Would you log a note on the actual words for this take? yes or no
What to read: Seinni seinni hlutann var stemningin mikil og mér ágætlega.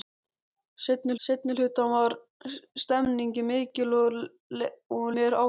no